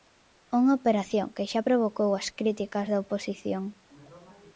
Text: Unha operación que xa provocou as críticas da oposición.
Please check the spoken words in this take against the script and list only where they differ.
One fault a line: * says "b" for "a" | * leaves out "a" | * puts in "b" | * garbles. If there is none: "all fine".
all fine